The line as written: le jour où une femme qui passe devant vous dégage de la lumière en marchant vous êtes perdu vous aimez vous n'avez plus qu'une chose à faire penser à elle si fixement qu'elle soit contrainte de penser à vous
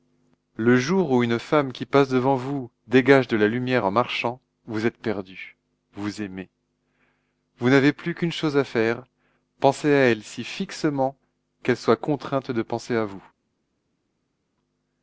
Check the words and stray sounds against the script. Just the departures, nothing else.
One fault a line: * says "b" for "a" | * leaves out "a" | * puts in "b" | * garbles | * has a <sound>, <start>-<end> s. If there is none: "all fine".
all fine